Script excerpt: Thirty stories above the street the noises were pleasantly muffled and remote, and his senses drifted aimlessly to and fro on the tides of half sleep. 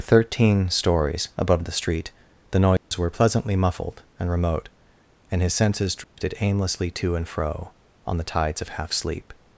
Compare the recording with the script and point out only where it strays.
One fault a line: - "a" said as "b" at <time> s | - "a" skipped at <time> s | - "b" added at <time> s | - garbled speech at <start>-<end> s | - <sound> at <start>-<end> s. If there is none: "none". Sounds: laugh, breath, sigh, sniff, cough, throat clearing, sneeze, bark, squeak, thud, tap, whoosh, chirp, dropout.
- "Thirty" said as "Thirteen" at 0.0 s
- dropout at 2.8-2.9 s
- dropout at 6.0-6.2 s